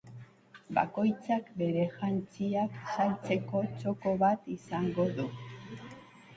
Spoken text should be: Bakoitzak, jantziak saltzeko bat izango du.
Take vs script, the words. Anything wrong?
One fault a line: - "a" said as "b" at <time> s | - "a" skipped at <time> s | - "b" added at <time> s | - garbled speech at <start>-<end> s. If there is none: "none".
- "bere" added at 1.6 s
- "txoko" added at 3.7 s